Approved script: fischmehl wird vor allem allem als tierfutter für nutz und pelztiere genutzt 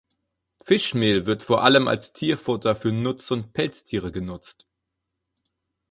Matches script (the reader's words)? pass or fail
fail